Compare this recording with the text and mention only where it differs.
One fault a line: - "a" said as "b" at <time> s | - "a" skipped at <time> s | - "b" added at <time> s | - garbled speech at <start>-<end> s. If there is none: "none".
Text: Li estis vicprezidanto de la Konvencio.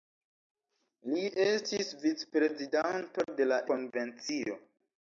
none